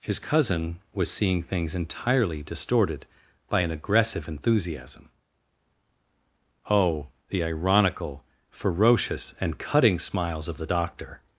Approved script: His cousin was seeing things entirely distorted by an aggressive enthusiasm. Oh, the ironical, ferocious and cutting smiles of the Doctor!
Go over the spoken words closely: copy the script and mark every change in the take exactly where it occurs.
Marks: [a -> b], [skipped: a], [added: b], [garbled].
His cousin was seeing things entirely distorted by an aggressive enthusiasm. Oh, the ironical, ferocious and cutting smiles of the Doctor!